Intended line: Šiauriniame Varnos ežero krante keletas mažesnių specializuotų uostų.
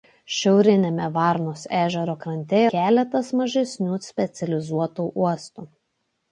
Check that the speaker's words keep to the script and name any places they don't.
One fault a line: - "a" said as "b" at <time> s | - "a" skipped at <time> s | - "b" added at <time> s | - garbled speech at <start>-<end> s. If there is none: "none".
none